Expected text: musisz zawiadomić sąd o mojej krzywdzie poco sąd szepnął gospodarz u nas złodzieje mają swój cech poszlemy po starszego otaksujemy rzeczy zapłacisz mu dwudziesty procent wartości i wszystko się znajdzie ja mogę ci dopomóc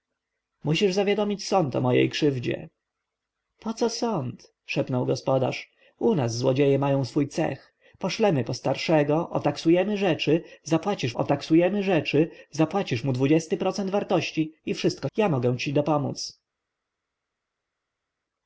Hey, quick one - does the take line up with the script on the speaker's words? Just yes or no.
no